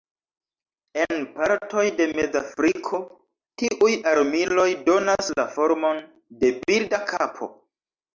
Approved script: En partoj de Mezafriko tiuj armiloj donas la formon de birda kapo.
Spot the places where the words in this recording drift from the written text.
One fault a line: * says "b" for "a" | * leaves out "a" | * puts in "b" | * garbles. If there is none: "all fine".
all fine